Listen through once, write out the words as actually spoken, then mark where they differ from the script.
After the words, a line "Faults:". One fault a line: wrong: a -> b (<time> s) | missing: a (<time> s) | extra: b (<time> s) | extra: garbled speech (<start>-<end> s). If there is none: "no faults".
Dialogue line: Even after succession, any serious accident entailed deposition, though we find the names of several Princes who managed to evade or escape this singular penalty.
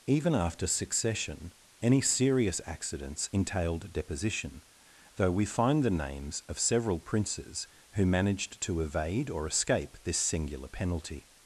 Even after succession, any serious accidents entailed deposition, though we find the names of several Princes who managed to evade or escape this singular penalty.
Faults:
wrong: accident -> accidents (2.6 s)